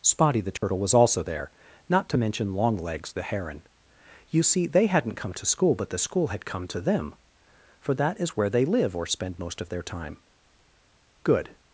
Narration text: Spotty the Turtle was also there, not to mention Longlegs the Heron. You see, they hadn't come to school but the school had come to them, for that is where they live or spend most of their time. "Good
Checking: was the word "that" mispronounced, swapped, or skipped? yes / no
no